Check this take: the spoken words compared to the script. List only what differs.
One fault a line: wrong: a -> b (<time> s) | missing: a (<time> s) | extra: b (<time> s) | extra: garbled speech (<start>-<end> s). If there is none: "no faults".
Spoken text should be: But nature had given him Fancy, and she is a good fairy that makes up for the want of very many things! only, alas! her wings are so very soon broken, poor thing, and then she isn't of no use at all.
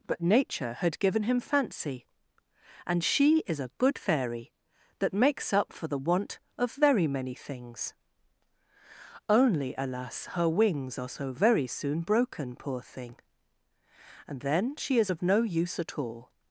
wrong: isn't -> is (15.0 s)